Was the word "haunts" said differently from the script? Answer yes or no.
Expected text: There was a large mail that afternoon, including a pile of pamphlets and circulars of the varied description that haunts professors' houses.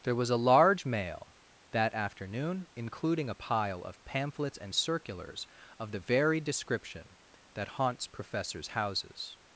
no